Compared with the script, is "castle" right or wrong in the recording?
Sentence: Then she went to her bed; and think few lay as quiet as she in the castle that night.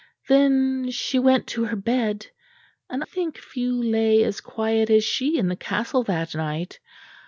right